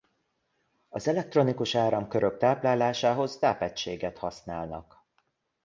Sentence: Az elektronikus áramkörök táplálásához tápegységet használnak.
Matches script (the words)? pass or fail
pass